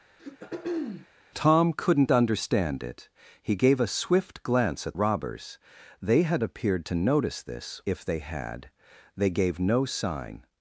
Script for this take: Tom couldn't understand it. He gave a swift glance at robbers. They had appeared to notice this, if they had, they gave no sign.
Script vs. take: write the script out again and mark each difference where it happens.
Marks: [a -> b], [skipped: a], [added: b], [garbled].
Tom couldn't understand it. He gave a swift glance at robbers. They had appeared to notice this, if they had, they gave no sign.